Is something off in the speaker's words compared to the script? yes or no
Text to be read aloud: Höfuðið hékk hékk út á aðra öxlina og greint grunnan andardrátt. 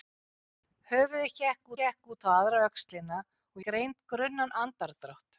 no